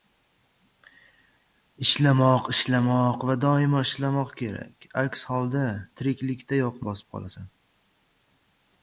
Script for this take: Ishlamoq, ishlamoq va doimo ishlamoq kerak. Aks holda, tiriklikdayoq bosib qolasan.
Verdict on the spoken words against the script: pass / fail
pass